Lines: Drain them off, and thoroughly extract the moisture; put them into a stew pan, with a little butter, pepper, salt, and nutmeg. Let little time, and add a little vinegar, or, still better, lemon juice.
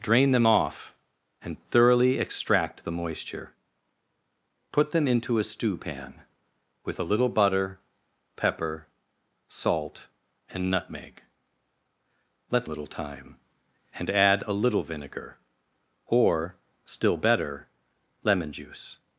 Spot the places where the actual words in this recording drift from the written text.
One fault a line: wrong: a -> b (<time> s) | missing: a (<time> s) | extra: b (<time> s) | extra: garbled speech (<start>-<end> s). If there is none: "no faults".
no faults